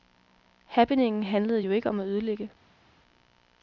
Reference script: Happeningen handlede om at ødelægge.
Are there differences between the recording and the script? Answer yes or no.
yes